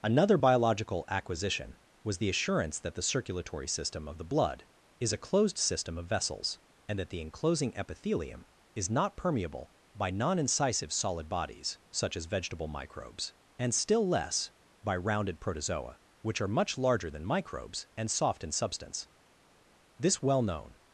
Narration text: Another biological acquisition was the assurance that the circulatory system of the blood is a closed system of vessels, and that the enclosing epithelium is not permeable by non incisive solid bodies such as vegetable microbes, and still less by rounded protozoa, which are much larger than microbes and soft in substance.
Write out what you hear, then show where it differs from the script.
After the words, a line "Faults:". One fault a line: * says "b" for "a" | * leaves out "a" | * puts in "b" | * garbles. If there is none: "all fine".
Another biological acquisition was the assurance that the circulatory system of the blood is a closed system of vessels, and that the enclosing epithelium is not permeable by non incisive solid bodies such as vegetable microbes, and still less by rounded protozoa, which are much larger than microbes and soft in substance. This well known
Faults:
* puts in "This well known"